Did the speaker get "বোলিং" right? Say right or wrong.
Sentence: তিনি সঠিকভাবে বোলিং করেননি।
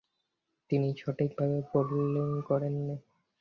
right